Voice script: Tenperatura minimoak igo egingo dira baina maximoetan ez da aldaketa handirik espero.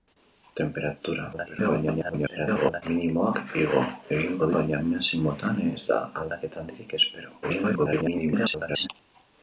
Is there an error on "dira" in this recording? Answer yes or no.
yes